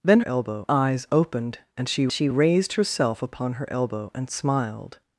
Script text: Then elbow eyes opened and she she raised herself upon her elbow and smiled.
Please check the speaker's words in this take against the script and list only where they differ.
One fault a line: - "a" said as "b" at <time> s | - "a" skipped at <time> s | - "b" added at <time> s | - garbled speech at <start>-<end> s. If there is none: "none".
none